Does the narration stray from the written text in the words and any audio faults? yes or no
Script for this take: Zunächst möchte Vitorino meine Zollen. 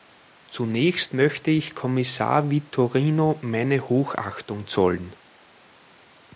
yes